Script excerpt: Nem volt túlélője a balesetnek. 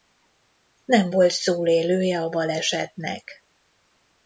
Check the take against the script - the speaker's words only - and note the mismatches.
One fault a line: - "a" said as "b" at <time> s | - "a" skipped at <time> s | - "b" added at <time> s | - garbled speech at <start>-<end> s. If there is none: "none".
none